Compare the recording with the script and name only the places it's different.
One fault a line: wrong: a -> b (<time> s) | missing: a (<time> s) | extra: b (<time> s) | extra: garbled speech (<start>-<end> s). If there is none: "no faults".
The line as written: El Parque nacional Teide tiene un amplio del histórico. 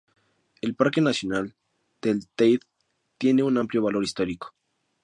extra: del (2.0 s)
wrong: del -> valor (3.8 s)